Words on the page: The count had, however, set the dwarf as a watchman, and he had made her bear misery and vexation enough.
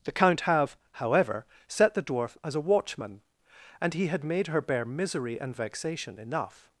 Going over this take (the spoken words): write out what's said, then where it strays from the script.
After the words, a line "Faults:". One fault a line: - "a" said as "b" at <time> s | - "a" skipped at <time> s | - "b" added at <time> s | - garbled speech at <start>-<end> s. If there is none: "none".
The count have, however, set the dwarf as a watchman, and he had made her bear misery and vexation enough.
Faults:
- "had" said as "have" at 0.4 s